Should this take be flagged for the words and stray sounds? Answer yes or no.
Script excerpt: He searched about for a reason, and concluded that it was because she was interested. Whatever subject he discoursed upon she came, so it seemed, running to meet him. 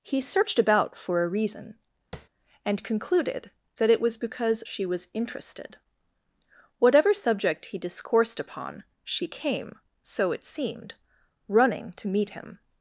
yes